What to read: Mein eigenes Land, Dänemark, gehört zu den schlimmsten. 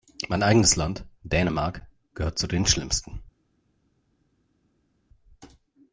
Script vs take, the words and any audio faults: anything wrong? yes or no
no